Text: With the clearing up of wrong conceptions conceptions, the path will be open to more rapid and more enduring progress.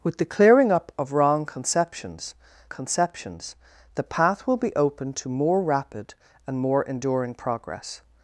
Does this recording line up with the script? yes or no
yes